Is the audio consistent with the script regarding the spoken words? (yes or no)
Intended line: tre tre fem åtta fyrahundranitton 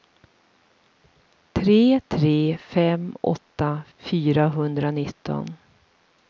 yes